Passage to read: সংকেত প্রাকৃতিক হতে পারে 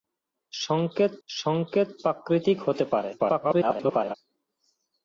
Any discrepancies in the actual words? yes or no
yes